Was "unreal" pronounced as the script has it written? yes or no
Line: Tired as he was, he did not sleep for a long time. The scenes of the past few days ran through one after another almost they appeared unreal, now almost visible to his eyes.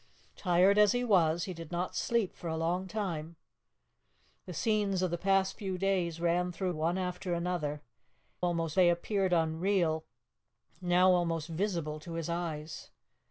yes